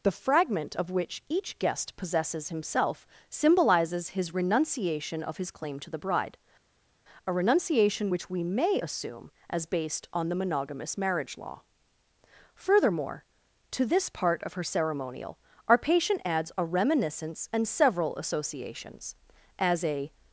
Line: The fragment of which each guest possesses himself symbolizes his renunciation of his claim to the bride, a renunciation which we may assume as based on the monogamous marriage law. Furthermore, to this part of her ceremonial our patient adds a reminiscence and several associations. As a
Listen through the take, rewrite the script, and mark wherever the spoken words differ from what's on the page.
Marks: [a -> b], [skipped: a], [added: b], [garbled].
The fragment of which each guest possesses himself symbolizes his renunciation of his claim to the bride, a renunciation which we may assume as based on the monogamous marriage law. Furthermore, to this part of her ceremonial our patient adds a reminiscence and several associations. As a